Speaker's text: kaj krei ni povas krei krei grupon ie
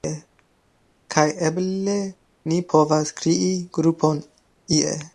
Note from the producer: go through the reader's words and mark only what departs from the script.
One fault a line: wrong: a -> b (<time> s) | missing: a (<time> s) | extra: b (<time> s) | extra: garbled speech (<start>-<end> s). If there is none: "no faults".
wrong: krei -> eble (1.5 s)
missing: krei (3.5 s)